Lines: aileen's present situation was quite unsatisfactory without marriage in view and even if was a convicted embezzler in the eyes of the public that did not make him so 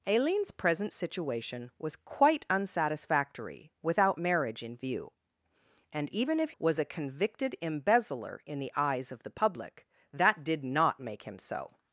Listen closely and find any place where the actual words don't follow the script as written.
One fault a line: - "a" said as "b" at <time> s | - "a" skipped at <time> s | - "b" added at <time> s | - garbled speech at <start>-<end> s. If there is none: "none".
none